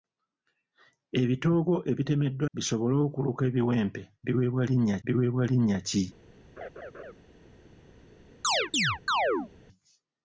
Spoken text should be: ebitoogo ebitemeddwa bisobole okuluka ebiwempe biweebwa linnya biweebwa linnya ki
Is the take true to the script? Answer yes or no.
yes